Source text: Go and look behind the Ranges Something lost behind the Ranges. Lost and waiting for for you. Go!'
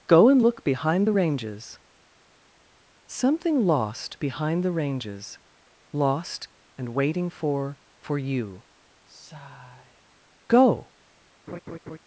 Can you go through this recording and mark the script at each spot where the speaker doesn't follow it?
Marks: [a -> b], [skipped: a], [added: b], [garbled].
Go and look behind the Ranges Something lost behind the Ranges. Lost and waiting for for you. Go!'